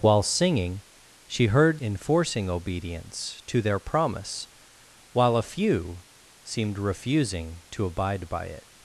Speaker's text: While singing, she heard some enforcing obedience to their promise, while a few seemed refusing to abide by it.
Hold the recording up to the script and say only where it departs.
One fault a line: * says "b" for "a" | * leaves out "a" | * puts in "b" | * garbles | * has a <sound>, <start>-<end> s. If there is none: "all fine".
* leaves out "some"